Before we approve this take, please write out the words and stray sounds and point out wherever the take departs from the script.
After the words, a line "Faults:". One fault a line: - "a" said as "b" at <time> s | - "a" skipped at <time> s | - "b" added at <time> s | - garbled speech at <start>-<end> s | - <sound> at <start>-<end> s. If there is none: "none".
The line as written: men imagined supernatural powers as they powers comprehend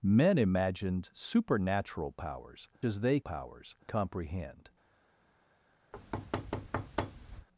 men imagined supernatural powers as they powers comprehend
Faults:
- thud at 5.9-7.5 s